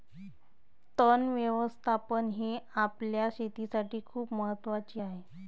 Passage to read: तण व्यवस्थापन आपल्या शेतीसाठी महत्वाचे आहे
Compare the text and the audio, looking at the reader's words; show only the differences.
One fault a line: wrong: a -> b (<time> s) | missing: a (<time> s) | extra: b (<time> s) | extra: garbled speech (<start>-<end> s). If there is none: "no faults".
extra: हे (2.3 s)
extra: खूप (4.0 s)